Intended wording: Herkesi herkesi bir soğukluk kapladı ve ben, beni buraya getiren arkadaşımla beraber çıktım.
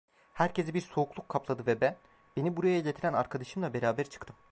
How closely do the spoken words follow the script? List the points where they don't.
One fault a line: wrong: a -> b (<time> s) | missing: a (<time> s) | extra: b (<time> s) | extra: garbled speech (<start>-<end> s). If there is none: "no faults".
missing: herkesi (0.7 s)